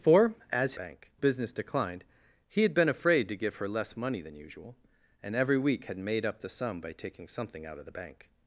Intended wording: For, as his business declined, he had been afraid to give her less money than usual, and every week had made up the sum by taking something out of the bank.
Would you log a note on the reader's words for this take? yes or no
yes